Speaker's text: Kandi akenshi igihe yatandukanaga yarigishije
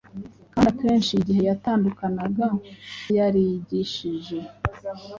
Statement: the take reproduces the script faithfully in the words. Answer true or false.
true